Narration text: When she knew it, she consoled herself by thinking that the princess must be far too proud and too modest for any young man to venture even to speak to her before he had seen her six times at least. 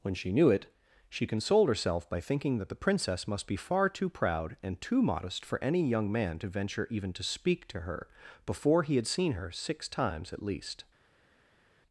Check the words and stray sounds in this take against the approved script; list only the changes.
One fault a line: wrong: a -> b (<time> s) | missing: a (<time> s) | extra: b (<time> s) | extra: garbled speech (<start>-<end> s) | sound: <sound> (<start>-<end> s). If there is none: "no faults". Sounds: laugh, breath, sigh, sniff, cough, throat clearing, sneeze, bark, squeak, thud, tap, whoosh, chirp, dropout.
no faults